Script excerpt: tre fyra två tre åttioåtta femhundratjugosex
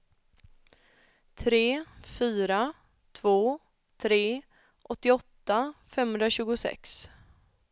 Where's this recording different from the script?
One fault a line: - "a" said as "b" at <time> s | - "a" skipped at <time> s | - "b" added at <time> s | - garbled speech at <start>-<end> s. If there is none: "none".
none